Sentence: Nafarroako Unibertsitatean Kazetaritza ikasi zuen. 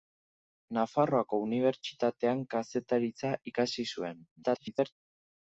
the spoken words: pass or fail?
fail